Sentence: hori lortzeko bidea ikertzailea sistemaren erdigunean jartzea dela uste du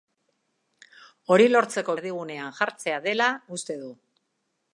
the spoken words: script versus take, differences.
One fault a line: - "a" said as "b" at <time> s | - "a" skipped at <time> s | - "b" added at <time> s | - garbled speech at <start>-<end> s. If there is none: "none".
- "bidea ikertzailea sistemaren" skipped at 1.9 s